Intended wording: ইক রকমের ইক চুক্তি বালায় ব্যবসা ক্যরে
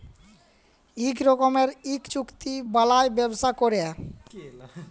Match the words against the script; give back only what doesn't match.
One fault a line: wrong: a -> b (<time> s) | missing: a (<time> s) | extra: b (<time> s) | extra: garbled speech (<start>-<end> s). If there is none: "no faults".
no faults